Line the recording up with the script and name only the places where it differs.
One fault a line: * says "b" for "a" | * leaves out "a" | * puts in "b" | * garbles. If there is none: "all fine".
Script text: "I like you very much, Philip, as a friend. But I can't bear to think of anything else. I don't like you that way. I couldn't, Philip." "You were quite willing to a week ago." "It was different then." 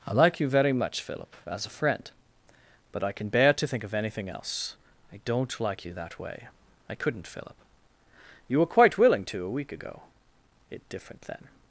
* says "can" for "can't"
* leaves out "was"